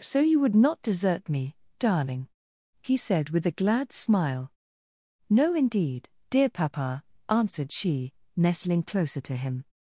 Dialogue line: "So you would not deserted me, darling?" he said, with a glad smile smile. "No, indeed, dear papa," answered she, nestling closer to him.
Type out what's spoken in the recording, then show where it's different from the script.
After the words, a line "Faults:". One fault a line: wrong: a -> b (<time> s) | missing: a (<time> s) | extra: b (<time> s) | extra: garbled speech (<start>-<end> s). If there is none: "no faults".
"So you would not desert me, darling?" he said, with a glad smile. "No, indeed, dear papa," answered she, nestling closer to him.
Faults:
wrong: deserted -> desert (0.8 s)
missing: smile (4.5 s)